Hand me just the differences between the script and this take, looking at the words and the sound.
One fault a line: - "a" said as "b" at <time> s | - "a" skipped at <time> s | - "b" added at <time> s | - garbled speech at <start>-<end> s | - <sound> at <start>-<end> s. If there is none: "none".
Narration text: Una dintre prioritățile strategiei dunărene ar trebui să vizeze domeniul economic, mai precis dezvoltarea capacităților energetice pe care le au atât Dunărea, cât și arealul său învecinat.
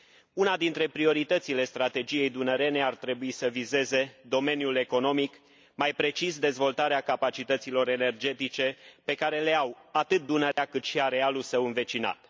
- dropout at 10.5-10.6 s